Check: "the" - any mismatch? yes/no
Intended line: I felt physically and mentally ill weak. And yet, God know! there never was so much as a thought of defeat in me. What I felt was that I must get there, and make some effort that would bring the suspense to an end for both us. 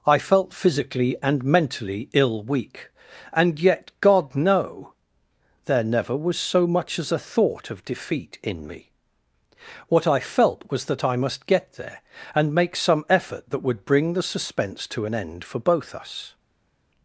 no